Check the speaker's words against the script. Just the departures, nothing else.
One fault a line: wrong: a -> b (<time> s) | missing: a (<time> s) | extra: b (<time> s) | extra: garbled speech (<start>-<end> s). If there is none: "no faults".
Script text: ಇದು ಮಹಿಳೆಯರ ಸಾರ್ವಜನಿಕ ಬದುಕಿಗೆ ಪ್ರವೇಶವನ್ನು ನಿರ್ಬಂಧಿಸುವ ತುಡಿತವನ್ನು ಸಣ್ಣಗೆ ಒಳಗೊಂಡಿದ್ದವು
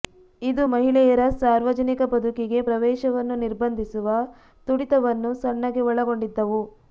no faults